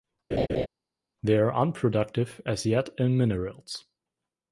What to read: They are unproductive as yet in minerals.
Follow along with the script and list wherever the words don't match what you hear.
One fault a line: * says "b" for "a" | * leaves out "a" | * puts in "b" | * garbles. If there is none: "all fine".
all fine